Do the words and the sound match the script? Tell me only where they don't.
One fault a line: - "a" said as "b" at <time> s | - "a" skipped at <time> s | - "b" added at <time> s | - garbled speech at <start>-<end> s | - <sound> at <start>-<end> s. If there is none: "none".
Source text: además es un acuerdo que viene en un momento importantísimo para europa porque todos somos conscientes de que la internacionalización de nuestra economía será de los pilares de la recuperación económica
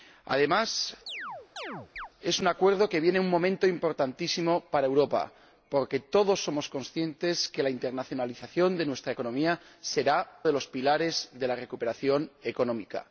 - chirp at 1.1-2.1 s